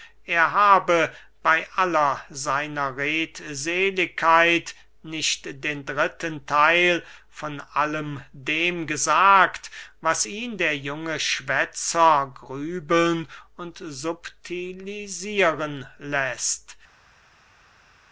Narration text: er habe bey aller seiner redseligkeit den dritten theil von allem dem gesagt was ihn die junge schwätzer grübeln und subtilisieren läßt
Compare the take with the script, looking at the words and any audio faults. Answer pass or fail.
fail